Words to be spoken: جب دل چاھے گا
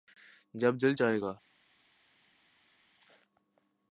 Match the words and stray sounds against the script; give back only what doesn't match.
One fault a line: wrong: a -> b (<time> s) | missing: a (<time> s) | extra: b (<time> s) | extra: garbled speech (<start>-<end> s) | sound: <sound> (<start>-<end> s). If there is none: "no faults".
no faults